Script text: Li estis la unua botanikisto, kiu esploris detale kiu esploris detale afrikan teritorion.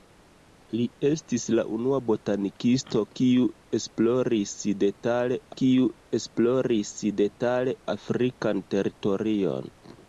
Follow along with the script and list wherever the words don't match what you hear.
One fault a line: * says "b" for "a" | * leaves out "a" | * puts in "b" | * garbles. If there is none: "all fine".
all fine